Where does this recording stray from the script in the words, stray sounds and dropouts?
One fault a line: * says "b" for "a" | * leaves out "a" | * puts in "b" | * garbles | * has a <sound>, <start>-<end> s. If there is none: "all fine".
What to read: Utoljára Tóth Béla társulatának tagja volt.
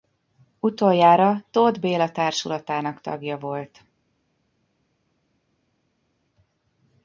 all fine